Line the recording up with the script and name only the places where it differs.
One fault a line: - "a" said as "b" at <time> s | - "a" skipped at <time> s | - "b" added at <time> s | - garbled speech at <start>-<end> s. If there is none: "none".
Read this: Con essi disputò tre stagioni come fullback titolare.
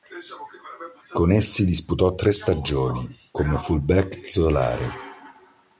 none